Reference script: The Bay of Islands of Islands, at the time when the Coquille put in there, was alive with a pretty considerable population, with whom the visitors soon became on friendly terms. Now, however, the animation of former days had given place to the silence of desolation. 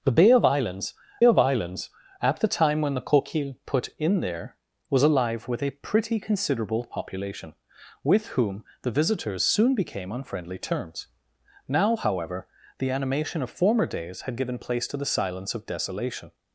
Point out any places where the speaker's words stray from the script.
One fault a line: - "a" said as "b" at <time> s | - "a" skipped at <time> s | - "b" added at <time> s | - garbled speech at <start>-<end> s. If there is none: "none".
none